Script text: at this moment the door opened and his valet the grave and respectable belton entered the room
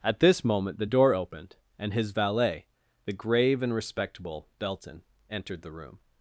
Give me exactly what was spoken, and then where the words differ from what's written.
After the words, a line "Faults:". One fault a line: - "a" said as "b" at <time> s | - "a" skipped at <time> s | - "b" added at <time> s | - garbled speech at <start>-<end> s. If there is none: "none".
at this moment the door opened and his valet the grave and respectable belton entered the room
Faults:
none